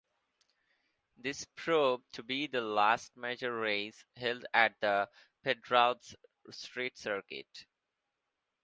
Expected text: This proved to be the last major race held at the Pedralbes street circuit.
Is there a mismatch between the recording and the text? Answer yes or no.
no